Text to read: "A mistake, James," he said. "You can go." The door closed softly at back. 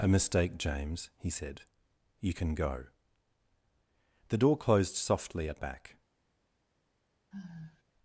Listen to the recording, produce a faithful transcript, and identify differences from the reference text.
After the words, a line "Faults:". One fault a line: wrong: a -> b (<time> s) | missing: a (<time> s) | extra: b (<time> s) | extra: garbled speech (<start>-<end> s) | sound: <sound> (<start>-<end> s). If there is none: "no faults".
"A mistake, James," he said. "You can go." The door closed softly at back.
Faults:
sound: sigh (7.3-7.8 s)